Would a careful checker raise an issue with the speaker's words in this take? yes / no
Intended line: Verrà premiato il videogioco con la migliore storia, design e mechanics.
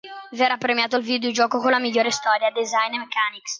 no